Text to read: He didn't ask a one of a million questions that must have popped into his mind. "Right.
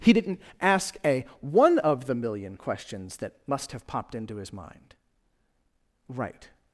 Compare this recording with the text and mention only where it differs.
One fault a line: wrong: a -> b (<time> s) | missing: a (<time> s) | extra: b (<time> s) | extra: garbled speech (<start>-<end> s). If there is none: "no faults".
wrong: a -> the (2.1 s)